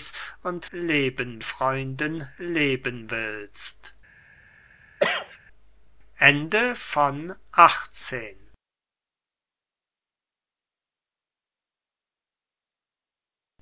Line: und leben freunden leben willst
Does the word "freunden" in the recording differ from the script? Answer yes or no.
no